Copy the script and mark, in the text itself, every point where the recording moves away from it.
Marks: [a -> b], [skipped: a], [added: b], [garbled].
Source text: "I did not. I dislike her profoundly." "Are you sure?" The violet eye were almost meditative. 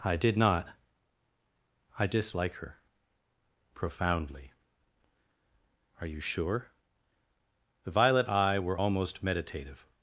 "I did not. I dislike her profoundly." "Are you sure?" The violet eye were almost meditative.